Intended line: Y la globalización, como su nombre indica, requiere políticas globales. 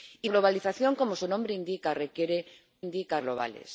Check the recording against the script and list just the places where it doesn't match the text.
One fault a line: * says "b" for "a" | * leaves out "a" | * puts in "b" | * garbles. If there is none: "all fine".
* leaves out "la"
* says "indica" for "políticas"